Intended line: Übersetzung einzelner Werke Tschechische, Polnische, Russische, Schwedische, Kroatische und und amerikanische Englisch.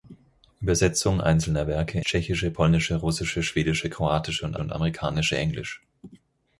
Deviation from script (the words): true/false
false